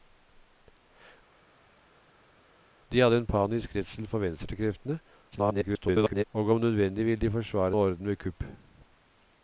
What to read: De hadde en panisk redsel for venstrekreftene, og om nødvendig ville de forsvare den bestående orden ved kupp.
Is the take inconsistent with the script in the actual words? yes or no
yes